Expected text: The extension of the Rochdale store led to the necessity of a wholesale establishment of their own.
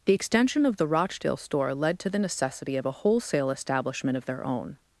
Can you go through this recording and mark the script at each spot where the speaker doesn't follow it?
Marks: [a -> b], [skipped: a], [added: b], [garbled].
The extension of the Rochdale store led to the necessity of a wholesale establishment of their own.